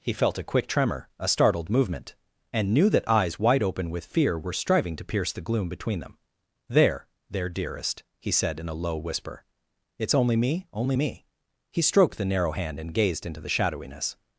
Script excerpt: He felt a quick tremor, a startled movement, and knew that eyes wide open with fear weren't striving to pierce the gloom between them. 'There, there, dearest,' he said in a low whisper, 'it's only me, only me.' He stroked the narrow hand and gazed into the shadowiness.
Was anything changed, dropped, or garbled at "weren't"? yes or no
yes